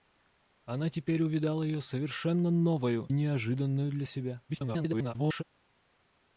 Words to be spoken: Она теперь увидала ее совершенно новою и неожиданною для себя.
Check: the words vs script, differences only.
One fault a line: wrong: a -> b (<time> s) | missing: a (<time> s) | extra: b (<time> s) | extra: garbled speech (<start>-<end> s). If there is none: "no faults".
missing: и (3.1 s)
extra: garbled speech (4.5-5.4 s)